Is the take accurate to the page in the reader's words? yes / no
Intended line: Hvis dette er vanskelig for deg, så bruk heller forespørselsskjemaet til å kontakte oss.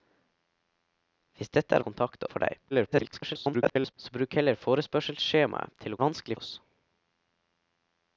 no